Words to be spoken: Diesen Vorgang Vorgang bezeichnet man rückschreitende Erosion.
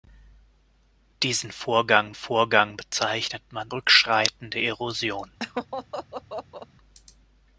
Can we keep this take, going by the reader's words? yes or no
yes